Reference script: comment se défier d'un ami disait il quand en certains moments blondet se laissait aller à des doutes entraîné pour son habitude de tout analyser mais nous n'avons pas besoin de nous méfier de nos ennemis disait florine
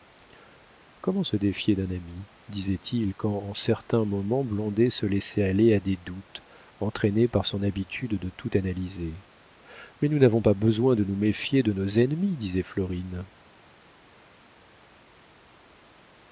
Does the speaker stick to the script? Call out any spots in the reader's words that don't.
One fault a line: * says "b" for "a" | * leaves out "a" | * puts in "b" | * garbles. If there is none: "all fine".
* says "par" for "pour"